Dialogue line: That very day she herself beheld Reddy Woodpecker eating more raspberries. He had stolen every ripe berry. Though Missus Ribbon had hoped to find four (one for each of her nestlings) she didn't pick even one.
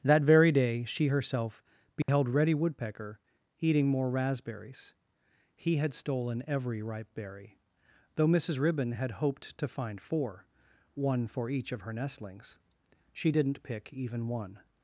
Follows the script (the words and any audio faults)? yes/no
no